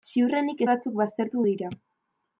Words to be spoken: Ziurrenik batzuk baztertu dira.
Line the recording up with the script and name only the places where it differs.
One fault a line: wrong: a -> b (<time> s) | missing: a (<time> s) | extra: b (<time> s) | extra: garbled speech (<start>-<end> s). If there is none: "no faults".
no faults